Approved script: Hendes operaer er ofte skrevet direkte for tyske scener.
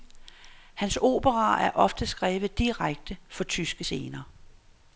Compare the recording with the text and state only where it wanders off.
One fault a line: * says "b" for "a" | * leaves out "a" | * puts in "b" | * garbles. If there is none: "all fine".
* says "Hans" for "Hendes"